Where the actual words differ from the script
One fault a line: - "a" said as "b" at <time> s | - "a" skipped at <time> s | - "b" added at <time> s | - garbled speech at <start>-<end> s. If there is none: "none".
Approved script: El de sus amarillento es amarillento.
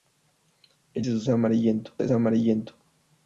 none